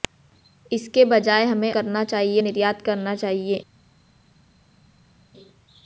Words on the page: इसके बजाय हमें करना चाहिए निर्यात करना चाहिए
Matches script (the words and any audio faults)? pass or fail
pass